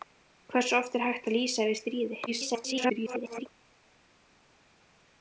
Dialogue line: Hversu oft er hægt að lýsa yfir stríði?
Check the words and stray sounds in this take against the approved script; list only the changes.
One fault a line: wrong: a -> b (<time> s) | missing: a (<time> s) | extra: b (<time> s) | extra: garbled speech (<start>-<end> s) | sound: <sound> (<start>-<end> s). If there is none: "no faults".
extra: garbled speech (2.3-3.5 s)